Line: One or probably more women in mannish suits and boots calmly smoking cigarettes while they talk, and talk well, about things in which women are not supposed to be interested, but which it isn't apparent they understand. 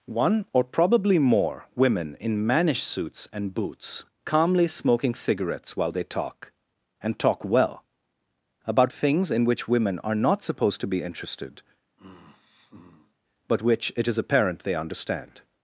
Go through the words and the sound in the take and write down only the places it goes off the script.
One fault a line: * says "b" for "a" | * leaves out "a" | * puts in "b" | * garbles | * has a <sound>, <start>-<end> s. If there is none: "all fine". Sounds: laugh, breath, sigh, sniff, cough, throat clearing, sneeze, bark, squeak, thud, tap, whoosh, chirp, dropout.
* has a sigh, 12.0-13.1 s
* says "is" for "isn't"